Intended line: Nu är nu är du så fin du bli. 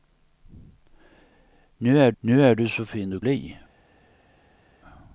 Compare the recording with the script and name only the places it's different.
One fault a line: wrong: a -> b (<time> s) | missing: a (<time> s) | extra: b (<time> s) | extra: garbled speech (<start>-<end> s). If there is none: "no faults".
no faults